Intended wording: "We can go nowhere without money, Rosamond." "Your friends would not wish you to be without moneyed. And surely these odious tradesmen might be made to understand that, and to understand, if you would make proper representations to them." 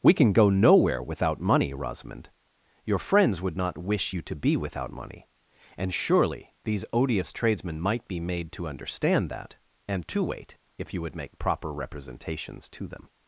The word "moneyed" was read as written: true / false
false